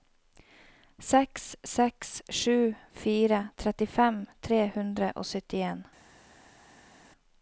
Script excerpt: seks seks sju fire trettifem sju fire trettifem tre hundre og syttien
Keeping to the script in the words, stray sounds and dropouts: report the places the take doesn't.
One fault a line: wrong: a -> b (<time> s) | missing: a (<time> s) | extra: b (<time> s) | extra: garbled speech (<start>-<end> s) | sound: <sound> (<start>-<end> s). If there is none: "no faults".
missing: sju fire trettifem (4.2 s)